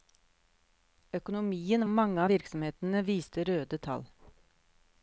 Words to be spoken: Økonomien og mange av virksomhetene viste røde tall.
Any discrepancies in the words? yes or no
no